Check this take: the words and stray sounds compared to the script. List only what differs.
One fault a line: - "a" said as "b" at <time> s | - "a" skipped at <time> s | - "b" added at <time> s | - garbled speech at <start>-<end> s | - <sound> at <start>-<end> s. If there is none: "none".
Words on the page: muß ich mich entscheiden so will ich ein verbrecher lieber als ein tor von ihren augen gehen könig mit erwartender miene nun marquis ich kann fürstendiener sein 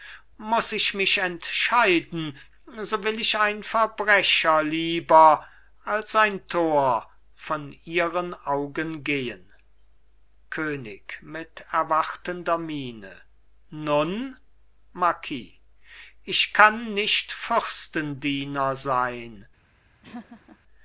- "nicht" added at 16.9 s
- laugh at 20.0-20.6 s